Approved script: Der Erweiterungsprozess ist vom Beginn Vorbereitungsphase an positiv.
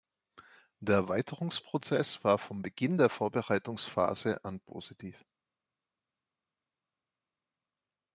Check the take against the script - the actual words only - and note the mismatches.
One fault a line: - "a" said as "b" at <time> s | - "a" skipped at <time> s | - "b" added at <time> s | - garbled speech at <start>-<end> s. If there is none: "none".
- "ist" said as "war" at 2.2 s
- "der" added at 3.0 s